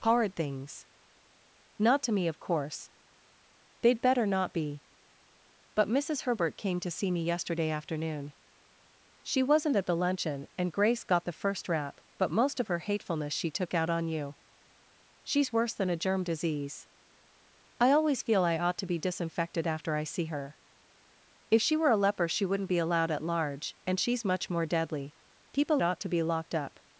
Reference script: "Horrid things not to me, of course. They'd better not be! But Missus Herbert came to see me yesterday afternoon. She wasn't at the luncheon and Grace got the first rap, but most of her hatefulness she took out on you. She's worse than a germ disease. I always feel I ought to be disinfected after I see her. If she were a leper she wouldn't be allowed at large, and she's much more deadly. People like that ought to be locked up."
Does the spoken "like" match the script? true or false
false